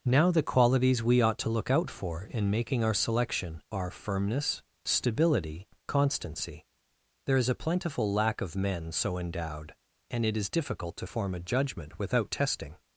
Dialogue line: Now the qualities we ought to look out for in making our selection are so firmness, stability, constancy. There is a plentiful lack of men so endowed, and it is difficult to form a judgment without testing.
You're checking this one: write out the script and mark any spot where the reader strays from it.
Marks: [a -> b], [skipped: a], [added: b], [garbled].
Now the qualities we ought to look out for in making our selection are [skipped: so] firmness, stability, constancy. There is a plentiful lack of men so endowed, and it is difficult to form a judgment without testing.